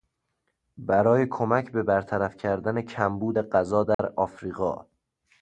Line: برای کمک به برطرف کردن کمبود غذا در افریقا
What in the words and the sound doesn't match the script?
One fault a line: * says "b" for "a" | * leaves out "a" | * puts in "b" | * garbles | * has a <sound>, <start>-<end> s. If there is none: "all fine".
* has a dropout, 3.9-4.0 s